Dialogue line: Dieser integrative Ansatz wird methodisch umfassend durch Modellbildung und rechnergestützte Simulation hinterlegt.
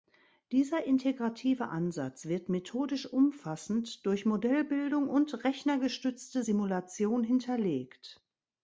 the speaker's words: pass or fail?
pass